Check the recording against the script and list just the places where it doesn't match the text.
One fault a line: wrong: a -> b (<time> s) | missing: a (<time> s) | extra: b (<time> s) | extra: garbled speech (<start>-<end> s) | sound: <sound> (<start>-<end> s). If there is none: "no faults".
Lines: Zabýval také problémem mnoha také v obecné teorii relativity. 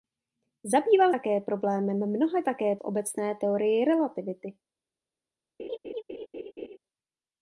sound: laugh (5.6-6.8 s)